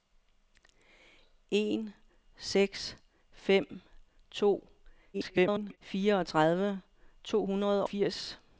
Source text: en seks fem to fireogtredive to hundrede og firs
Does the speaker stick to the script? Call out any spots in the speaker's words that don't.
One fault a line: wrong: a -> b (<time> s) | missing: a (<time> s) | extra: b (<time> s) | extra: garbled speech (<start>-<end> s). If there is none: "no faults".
extra: garbled speech (5.1-5.8 s)
missing: og (7.9 s)